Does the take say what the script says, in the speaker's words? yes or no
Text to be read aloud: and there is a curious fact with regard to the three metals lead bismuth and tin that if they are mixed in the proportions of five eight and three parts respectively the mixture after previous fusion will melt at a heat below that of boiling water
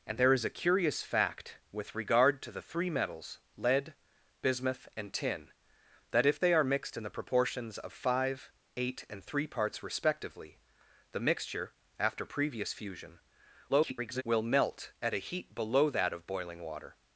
no